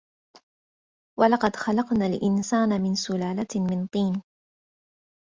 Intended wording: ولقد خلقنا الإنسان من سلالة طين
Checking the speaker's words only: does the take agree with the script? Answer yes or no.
no